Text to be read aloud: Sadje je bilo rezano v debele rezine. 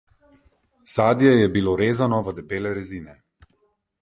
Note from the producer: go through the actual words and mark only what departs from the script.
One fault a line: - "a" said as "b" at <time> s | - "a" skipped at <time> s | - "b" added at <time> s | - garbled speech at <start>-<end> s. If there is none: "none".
none